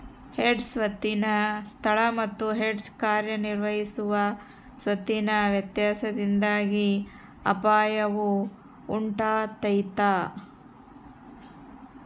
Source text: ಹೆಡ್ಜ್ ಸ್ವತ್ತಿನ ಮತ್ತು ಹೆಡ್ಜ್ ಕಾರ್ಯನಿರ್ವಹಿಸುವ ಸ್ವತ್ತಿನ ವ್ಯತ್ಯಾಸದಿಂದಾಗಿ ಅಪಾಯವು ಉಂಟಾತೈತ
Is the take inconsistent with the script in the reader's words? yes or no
yes